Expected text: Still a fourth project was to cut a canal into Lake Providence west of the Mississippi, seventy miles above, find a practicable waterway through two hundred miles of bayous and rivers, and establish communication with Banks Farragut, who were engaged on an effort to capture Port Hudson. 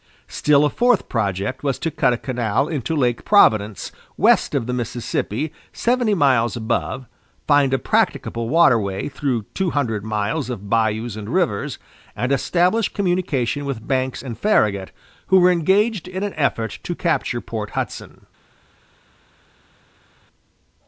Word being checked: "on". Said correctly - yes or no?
no